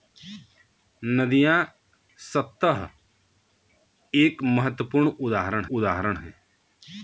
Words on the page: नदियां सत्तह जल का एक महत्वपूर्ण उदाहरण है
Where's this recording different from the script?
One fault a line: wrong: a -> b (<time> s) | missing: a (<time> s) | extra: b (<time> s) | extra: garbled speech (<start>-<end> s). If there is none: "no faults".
missing: जल का (2.9 s)
extra: उदाहरण (5.7 s)